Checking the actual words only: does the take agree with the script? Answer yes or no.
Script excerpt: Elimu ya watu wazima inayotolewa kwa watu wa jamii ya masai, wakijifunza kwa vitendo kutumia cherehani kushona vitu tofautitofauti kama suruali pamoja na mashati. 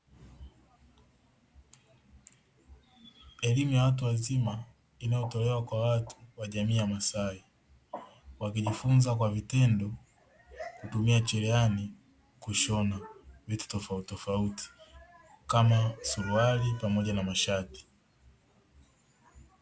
yes